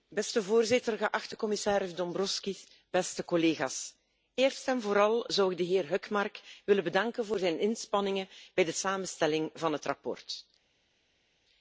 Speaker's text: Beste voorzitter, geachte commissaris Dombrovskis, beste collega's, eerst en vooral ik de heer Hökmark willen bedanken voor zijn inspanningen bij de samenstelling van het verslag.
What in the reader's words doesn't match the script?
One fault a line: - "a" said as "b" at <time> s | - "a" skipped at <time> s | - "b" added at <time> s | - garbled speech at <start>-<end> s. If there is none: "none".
- "zou" added at 5.3 s